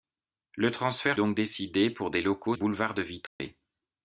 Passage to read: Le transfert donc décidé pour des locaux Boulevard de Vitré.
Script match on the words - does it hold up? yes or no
yes